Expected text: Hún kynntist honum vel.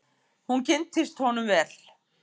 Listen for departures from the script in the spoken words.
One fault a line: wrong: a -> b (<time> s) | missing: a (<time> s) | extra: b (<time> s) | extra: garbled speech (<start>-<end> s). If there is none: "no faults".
no faults